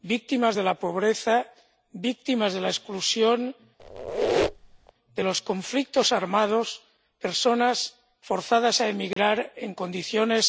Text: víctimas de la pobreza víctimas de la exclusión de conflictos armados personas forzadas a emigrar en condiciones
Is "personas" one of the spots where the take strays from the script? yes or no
no